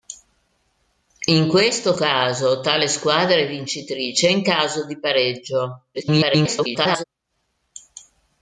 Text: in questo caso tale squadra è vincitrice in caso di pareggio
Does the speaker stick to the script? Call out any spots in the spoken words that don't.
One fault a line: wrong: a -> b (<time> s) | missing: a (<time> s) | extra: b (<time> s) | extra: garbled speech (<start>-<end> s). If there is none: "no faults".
extra: garbled speech (5.9-7.0 s)